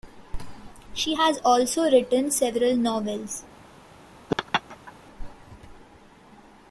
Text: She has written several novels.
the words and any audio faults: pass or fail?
fail